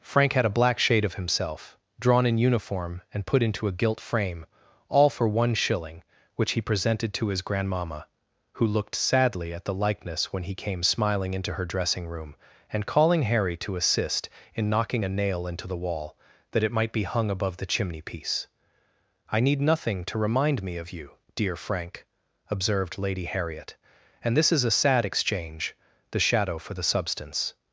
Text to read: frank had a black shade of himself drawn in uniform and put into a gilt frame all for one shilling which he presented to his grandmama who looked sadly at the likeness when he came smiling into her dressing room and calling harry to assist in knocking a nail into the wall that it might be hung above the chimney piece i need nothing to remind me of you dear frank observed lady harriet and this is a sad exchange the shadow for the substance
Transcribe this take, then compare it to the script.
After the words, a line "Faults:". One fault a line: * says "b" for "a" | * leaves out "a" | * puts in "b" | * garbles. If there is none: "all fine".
frank had a black shade of himself drawn in uniform and put into a gilt frame all for one shilling which he presented to his grandmama who looked sadly at the likeness when he came smiling into her dressing room and calling harry to assist in knocking a nail into the wall that it might be hung above the chimney piece i need nothing to remind me of you dear frank observed lady harriet and this is a sad exchange the shadow for the substance
Faults:
all fine